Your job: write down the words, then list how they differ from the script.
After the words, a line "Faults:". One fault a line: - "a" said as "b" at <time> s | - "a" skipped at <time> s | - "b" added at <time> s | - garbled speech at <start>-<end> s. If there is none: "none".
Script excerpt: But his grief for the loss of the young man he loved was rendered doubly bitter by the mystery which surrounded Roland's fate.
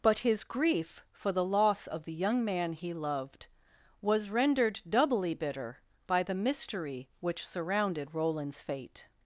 But his grief for the loss of the young man he loved was rendered doubly bitter by the mystery which surrounded Roland's fate.
Faults:
none